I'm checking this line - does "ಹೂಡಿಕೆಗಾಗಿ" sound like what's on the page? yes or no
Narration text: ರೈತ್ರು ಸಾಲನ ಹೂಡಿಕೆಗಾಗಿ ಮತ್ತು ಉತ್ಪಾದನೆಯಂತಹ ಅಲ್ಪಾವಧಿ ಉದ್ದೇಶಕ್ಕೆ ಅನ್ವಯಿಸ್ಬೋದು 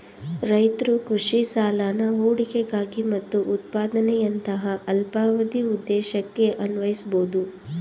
yes